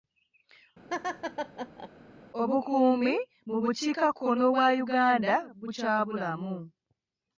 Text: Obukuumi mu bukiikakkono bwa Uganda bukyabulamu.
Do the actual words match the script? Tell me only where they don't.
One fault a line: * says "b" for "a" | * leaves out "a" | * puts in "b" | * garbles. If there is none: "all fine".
all fine